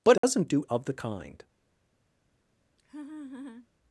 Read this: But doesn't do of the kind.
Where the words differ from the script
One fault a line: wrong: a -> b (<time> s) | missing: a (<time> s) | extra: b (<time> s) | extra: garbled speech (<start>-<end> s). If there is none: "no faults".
no faults